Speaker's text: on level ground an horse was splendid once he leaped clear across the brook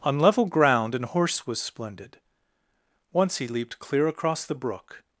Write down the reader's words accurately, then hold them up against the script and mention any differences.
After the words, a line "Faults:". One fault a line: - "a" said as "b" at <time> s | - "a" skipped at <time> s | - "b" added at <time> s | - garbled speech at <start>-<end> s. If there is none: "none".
on level ground an horse was splendid once he leaped clear across the brook
Faults:
none